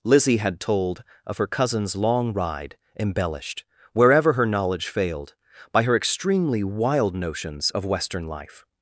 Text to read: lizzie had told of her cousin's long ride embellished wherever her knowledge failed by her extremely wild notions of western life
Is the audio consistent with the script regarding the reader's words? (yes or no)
yes